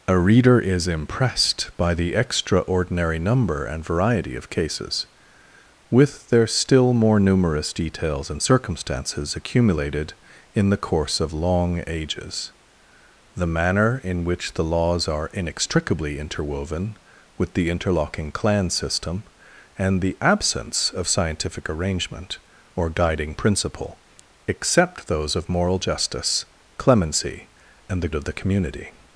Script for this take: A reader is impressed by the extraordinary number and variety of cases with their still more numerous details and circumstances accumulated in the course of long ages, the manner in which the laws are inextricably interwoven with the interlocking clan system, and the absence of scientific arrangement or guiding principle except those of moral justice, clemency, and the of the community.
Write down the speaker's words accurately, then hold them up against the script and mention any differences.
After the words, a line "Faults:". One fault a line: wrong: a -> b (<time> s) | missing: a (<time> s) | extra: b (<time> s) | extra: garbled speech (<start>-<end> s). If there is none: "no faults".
A reader is impressed by the extraordinary number and variety of cases with their still more numerous details and circumstances accumulated in the course of long ages, the manner in which the laws are inextricably interwoven with the interlocking clan system, and the absence of scientific arrangement or guiding principle except those of moral justice, clemency, and the of the community.
Faults:
no faults